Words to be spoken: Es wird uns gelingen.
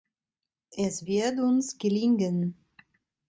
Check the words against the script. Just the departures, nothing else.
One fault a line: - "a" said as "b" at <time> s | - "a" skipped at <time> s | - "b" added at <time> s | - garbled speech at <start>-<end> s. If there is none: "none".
none